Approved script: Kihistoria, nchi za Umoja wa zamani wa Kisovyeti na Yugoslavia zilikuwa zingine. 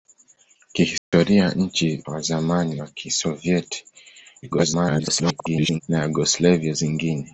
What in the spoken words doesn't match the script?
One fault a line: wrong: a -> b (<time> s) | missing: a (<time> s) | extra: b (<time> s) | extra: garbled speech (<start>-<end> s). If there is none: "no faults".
missing: za Umoja (2.0 s)
extra: garbled speech (4.4-5.8 s)
missing: zilikuwa (6.7 s)